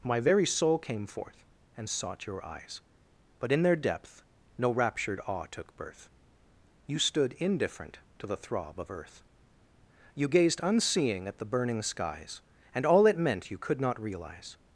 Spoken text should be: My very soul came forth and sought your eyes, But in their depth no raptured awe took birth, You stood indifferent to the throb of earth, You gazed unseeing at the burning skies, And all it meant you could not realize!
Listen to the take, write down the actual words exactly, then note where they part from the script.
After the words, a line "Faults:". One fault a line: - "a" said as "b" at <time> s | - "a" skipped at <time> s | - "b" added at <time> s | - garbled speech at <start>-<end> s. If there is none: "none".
My very soul came forth and sought your eyes, But in their depth no raptured awe took birth, You stood indifferent to the throb of earth, You gazed unseeing at the burning skies, And all it meant you could not realize!
Faults:
none